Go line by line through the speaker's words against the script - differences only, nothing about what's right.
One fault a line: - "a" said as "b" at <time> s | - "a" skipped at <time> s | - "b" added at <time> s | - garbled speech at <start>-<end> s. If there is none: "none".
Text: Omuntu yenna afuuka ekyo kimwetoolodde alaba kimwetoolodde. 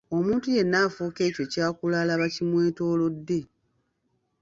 - "kimwetoolodde" said as "ky'akula" at 1.5 s